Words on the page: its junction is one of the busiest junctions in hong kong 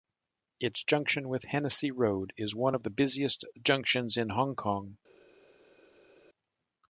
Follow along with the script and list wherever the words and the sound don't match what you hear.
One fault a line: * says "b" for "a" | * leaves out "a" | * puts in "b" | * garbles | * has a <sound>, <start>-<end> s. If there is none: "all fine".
* puts in "with hennessy road"